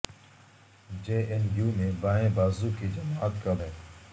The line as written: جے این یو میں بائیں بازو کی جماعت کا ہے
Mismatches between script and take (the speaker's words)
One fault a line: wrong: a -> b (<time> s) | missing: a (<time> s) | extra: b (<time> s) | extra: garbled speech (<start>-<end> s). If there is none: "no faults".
no faults